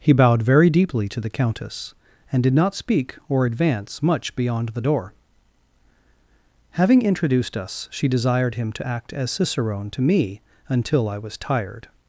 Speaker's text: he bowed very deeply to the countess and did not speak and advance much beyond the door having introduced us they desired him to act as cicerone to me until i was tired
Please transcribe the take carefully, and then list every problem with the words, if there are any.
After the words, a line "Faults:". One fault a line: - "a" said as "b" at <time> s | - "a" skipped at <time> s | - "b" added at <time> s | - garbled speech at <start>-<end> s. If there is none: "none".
he bowed very deeply to the countess and did not speak or advance much beyond the door having introduced us she desired him to act as cicerone to me until i was tired
Faults:
- "and" said as "or" at 3.3 s
- "they" said as "she" at 7.9 s